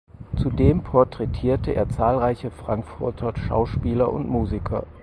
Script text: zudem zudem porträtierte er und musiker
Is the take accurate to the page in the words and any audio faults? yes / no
no